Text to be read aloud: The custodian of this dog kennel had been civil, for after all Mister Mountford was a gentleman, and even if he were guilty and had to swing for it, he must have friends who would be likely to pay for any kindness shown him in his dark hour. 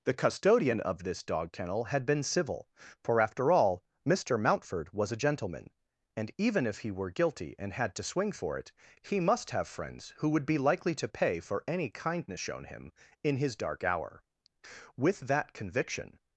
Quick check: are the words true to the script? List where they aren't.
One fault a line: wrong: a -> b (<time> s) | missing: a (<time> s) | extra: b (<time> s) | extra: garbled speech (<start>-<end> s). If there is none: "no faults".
extra: With that conviction (15.0 s)